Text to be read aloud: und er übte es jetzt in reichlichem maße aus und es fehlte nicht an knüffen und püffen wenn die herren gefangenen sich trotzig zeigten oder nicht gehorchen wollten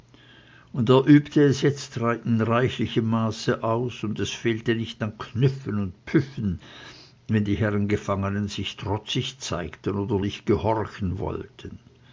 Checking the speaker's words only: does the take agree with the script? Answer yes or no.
yes